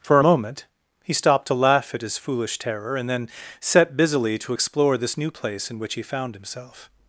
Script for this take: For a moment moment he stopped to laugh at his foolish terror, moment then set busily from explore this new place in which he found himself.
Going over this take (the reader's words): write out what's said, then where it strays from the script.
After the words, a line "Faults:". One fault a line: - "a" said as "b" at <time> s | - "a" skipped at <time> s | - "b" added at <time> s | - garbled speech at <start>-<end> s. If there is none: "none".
For a moment he stopped to laugh at his foolish terror, and then set busily to explore this new place in which he found himself.
Faults:
- "moment" skipped at 0.7 s
- "moment" said as "and" at 3.0 s
- "from" said as "to" at 4.4 s